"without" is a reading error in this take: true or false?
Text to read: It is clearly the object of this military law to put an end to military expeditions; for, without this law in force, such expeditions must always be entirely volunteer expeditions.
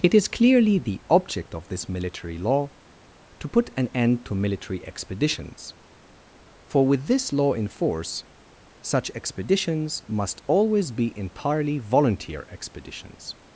true